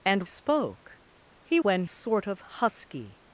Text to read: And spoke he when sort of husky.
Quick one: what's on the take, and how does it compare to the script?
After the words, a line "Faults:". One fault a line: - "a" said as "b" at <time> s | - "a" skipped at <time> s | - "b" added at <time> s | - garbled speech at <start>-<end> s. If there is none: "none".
And spoke he when sort of husky.
Faults:
none